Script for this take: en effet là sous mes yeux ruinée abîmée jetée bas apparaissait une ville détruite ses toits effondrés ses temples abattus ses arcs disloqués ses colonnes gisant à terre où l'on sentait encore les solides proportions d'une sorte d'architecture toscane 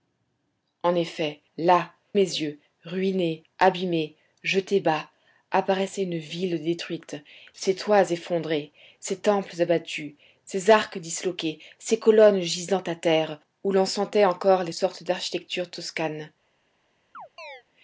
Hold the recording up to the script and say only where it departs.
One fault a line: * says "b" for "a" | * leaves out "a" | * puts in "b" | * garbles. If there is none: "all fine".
* leaves out "sous"
* leaves out "solides proportions d'une"